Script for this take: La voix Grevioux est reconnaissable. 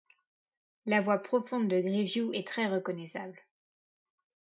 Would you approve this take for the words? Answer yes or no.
no